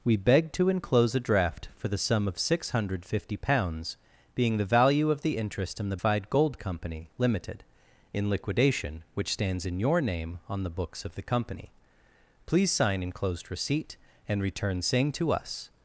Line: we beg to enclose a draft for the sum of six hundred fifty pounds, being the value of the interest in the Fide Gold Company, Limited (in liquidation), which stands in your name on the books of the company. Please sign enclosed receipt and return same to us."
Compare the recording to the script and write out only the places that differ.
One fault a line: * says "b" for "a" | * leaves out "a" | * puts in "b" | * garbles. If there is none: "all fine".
all fine